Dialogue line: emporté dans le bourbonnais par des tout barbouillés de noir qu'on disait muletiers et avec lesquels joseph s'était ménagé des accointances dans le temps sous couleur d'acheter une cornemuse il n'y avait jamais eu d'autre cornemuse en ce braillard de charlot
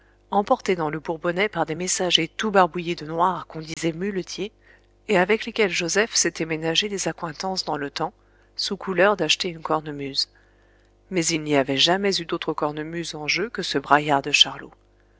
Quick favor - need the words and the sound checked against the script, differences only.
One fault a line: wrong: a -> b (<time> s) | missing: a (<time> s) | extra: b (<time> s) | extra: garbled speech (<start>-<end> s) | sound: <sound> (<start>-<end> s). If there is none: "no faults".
extra: messagers (1.7 s)
sound: dropout (3.7-3.8 s)
extra: mais (11.1 s)
extra: jeu que (13.3 s)